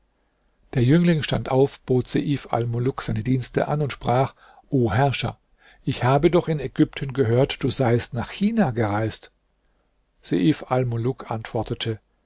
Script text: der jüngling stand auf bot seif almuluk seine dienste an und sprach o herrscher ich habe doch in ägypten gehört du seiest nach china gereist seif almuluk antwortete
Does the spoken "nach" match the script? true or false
true